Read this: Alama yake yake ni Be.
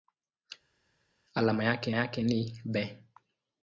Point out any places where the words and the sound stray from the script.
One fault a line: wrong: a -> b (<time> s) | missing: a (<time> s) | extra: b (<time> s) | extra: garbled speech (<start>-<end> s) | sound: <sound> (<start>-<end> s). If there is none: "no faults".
no faults